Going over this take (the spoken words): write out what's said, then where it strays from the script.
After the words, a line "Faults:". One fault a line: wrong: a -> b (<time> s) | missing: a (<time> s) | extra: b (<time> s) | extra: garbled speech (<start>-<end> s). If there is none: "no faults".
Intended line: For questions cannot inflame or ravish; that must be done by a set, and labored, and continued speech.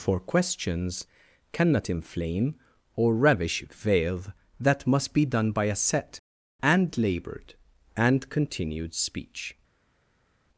For questions cannot inflame or ravish; veil that must be done by a set, and labored, and continued speech.
Faults:
extra: veil (3.7 s)